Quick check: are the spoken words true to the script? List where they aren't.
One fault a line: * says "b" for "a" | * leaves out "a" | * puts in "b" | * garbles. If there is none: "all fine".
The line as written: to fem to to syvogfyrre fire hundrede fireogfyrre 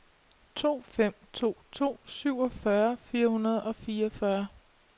* puts in "og"